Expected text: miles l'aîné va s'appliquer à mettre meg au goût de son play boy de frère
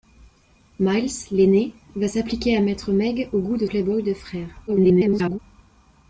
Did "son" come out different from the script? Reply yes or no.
yes